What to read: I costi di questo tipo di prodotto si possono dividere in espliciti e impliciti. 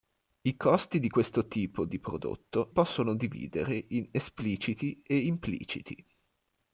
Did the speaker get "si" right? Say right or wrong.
wrong